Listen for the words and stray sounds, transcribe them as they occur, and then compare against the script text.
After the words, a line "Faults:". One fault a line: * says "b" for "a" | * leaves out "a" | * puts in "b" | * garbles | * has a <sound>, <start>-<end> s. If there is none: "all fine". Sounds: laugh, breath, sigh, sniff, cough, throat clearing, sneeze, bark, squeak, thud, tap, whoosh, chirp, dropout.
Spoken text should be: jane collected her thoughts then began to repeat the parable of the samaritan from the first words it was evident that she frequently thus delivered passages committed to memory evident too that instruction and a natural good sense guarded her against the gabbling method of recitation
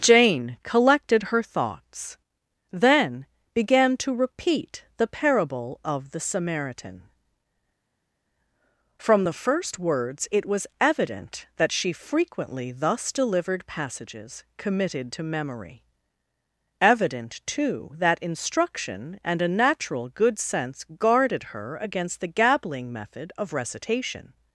jane collected her thoughts then began to repeat the parable of the samaritan from the first words it was evident that she frequently thus delivered passages committed to memory evident too that instruction and a natural good sense guarded her against the gabbling method of recitation
Faults:
all fine